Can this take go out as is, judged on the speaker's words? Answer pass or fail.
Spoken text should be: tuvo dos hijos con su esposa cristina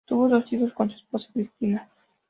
pass